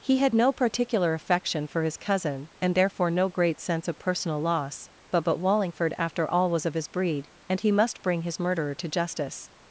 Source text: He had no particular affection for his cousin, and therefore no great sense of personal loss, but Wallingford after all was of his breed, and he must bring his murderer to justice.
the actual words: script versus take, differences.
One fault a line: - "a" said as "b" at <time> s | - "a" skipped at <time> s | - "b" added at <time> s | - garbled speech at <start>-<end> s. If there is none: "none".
- "but" added at 5.2 s